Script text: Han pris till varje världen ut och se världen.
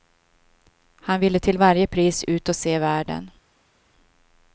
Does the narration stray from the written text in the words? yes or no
yes